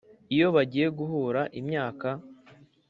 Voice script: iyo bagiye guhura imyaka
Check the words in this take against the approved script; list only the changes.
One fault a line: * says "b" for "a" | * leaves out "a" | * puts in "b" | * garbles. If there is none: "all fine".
all fine